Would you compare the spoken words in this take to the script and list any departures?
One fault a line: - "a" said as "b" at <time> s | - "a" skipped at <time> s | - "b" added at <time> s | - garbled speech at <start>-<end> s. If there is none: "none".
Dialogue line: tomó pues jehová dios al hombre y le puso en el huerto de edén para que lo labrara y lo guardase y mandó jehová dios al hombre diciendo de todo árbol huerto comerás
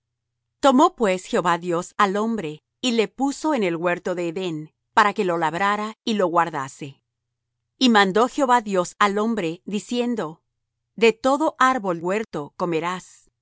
none